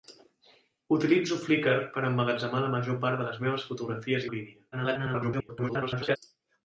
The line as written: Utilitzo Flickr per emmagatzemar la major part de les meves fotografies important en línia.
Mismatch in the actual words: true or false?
true